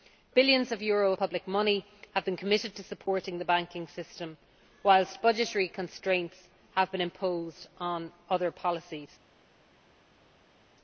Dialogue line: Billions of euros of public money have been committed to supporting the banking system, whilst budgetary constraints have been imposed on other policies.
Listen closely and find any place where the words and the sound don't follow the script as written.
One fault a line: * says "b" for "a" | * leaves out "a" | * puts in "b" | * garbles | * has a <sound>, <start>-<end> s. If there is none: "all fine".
* leaves out "of"